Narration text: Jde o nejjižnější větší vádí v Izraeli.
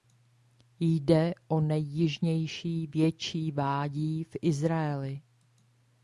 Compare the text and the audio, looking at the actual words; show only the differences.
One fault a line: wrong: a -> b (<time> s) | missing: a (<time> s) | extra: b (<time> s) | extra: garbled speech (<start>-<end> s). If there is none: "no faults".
no faults